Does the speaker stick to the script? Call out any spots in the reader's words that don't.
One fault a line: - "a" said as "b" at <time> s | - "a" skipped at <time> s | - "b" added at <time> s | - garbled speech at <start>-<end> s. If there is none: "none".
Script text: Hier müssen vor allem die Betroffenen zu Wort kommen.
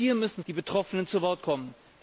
- "vor allem" skipped at 0.4 s